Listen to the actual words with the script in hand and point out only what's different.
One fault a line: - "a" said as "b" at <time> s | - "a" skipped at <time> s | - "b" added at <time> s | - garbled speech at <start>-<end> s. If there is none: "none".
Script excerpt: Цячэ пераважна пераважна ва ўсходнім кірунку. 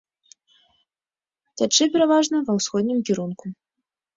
- "пераважна" skipped at 2.4 s